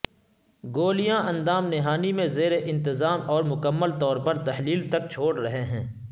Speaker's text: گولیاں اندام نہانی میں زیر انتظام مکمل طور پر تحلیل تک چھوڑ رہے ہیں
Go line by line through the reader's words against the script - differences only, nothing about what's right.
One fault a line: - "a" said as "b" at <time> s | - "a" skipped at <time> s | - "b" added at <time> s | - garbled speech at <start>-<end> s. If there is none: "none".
- "اور" added at 3.3 s